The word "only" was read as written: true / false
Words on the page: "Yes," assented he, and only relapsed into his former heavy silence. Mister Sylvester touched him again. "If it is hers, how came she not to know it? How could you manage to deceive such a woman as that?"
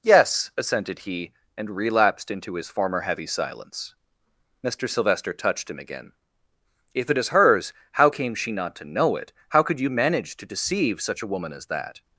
false